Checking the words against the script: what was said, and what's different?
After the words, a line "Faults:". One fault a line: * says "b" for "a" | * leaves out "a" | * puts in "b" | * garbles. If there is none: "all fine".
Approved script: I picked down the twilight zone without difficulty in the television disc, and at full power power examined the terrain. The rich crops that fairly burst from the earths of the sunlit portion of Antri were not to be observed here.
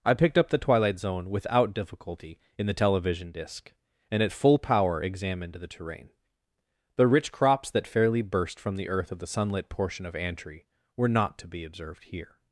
I picked up the twilight zone without difficulty in the television disc, and at full power examined the terrain. The rich crops that fairly burst from the earth of the sunlit portion of Antri were not to be observed here.
Faults:
* says "up" for "down"
* leaves out "power"
* says "earth" for "earths"